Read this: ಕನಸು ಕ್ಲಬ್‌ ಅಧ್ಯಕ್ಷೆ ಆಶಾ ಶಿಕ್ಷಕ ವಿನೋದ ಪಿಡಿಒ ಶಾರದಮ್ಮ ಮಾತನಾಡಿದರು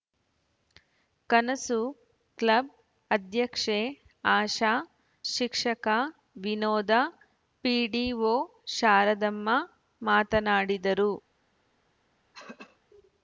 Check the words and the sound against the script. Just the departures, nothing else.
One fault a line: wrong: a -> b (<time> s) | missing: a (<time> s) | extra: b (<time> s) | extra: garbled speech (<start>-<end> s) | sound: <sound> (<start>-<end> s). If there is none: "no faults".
sound: throat clearing (12.3-12.8 s)